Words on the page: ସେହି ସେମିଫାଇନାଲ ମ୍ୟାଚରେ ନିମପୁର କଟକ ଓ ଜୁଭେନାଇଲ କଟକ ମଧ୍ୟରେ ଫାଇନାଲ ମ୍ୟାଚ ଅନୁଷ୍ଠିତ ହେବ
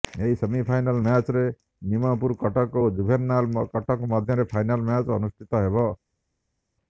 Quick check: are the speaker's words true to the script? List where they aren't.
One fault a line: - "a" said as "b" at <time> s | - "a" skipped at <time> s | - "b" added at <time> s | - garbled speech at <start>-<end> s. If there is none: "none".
- "ସେହି" said as "ଏହି" at 0.2 s